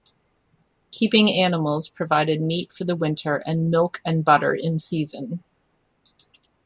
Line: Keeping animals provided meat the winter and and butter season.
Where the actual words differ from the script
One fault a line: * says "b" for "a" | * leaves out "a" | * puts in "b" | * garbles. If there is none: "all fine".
* puts in "for"
* puts in "milk"
* puts in "in"